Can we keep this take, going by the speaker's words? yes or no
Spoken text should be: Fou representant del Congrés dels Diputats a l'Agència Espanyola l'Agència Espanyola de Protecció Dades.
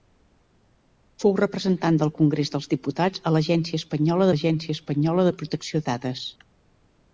yes